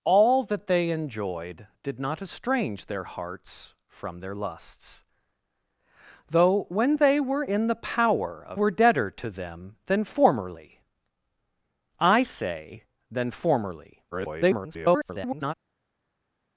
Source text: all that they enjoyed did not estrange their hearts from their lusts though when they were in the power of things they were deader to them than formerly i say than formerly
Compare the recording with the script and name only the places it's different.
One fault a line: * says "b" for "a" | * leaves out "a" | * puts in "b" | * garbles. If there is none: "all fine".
* leaves out "things they"
* garbles